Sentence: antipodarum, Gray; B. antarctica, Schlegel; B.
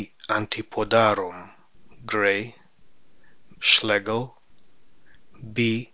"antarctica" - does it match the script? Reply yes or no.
no